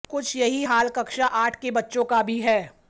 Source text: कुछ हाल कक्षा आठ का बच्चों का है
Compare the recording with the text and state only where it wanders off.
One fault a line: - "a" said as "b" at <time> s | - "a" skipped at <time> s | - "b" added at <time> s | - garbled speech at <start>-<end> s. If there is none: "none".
- "यही" added at 0.3 s
- "का" said as "के" at 1.6 s
- "भी" added at 2.2 s